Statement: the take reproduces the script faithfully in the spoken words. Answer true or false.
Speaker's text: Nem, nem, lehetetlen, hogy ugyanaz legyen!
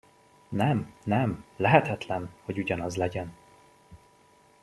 true